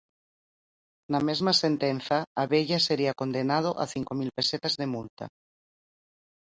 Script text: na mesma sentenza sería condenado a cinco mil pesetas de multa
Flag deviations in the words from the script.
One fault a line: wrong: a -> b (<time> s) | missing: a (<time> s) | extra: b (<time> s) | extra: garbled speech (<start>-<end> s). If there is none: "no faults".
extra: abella (2.4 s)